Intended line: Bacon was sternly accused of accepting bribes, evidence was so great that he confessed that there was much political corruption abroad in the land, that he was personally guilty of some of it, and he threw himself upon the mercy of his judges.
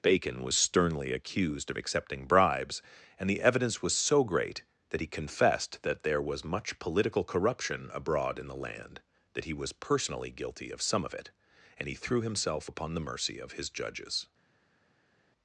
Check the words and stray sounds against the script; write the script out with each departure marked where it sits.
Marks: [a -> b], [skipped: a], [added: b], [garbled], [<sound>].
Bacon was sternly accused of accepting bribes, [added: and the] evidence was so great that he confessed that there was much political corruption abroad in the land, that he was personally guilty of some of it, and he threw himself upon the mercy of his judges.